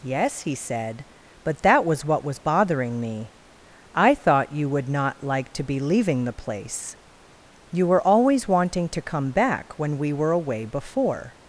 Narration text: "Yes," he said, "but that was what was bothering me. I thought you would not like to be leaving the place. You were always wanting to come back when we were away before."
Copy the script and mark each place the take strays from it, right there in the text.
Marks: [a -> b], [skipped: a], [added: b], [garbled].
"Yes," he said, "but that was what was bothering me. I thought you would not like to be leaving the place. You were always wanting to come back when we were away before."